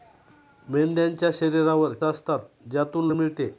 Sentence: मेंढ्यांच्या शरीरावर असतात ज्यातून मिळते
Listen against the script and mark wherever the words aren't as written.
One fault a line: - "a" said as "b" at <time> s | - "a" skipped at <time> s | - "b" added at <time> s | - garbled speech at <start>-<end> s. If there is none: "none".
none